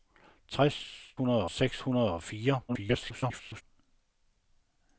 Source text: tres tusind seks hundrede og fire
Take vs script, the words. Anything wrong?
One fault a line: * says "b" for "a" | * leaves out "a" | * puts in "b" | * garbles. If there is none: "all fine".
* says "hundrede" for "tusind"
* garbles